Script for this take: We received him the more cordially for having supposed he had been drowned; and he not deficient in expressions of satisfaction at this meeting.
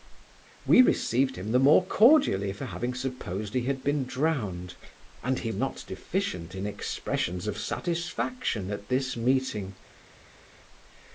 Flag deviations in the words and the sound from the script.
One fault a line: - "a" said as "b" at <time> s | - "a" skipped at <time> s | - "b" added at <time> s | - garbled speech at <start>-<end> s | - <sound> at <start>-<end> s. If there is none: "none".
none